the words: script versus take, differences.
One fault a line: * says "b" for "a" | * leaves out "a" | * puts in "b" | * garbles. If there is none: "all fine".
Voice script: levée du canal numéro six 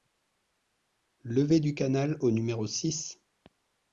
* puts in "au"